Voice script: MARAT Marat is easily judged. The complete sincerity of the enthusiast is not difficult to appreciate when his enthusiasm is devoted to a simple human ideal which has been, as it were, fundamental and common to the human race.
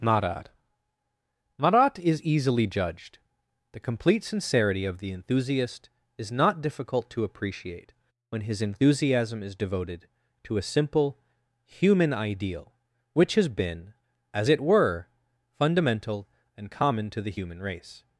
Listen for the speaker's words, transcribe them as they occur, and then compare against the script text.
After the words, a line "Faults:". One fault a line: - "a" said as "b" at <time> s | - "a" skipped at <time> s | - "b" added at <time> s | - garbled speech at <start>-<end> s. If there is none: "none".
MARAT Marat is easily judged. The complete sincerity of the enthusiast is not difficult to appreciate when his enthusiasm is devoted to a simple human ideal which has been, as it were, fundamental and common to the human race.
Faults:
none